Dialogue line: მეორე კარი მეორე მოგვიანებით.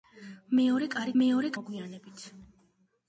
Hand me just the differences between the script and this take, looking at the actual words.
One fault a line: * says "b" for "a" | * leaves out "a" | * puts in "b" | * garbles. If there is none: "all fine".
all fine